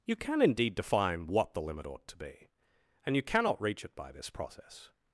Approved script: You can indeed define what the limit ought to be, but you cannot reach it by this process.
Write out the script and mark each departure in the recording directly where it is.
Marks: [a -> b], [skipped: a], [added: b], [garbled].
You can indeed define what the limit ought to be, [but -> and] you cannot reach it by this process.